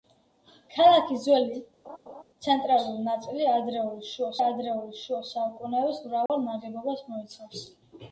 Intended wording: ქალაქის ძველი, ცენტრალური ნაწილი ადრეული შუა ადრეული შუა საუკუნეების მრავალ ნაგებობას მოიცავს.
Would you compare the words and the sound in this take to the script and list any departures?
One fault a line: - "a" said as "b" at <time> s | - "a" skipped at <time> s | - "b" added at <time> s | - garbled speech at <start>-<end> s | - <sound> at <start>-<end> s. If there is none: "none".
- laugh at 1.8-2.2 s
- dropout at 6.3-6.3 s